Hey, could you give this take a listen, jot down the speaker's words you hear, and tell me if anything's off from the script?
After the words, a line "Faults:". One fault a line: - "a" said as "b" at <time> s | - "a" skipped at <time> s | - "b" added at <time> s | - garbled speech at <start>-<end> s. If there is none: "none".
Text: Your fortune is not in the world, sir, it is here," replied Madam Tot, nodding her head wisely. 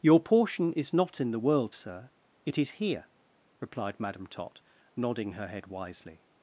Your portion is not in the world, sir, it is here," replied Madam Tot, nodding her head wisely.
Faults:
- "fortune" said as "portion" at 0.2 s